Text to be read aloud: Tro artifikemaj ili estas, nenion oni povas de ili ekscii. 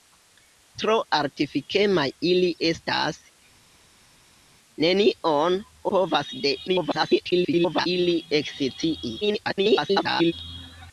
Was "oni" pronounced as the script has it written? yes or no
no